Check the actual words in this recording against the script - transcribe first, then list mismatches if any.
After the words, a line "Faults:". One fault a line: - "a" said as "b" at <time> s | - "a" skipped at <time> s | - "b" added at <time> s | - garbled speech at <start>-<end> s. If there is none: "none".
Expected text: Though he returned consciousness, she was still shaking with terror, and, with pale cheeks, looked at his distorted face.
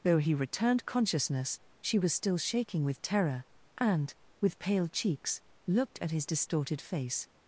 Though he returned consciousness, she was still shaking with terror, and, with pale cheeks, looked at his distorted face.
Faults:
none